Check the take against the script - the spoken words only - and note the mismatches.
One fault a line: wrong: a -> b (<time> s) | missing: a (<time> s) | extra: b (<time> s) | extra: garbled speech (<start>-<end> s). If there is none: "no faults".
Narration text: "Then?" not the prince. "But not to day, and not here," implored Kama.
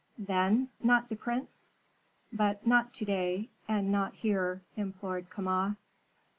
no faults